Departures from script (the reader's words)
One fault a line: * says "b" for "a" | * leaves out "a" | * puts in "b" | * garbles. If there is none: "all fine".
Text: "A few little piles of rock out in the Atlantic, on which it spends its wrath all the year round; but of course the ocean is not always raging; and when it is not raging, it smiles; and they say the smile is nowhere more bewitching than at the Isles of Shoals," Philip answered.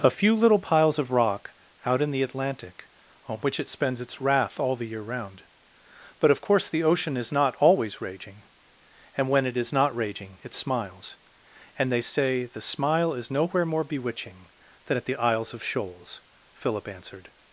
all fine